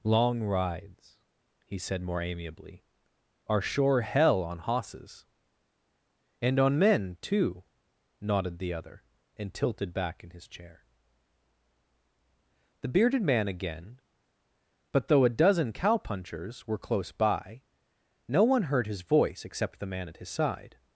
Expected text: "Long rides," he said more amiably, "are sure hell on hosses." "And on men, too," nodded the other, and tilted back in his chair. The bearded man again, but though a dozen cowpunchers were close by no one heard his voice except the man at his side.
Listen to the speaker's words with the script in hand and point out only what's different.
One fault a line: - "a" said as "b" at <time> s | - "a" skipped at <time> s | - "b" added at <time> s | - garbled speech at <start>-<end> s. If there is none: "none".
none